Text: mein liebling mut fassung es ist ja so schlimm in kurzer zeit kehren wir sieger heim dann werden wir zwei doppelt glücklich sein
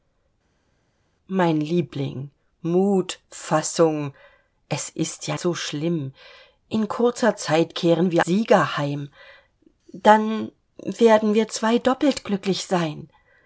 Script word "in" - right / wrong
right